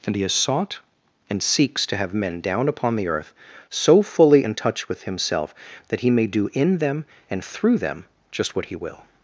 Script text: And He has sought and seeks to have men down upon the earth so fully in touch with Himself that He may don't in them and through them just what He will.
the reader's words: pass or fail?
fail